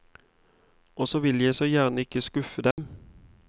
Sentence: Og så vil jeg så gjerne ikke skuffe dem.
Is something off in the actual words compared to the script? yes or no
no